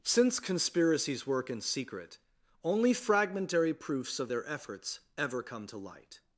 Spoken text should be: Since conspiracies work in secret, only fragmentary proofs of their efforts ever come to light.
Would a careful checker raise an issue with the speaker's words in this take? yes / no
no